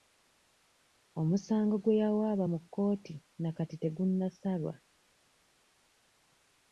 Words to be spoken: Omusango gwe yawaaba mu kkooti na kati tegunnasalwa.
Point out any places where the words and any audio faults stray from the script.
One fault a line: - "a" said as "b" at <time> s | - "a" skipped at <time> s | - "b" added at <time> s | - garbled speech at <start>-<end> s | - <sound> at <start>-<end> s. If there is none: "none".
none